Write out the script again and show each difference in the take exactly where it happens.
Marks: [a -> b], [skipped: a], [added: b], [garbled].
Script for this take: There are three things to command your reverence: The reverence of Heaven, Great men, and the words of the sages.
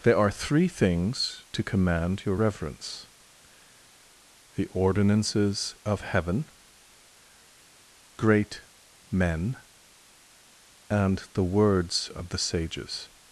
There are three things to command your reverence: The [reverence -> ordinances] of Heaven, Great men, and the words of the sages.